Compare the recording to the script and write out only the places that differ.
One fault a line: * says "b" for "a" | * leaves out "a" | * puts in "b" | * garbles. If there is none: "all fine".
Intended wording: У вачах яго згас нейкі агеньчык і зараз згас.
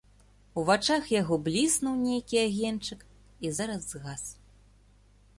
* says "бліснуў" for "згас"